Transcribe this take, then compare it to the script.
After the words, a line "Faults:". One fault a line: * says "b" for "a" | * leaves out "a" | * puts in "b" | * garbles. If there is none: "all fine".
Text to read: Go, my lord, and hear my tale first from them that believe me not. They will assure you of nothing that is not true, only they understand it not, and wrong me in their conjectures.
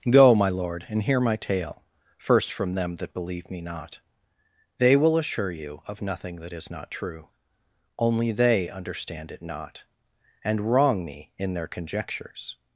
Go, my lord, and hear my tale first from them that believe me not. They will assure you of nothing that is not true, only they understand it not, and wrong me in their conjectures.
Faults:
all fine